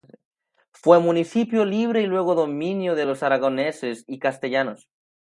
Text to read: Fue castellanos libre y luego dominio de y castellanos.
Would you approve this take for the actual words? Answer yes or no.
no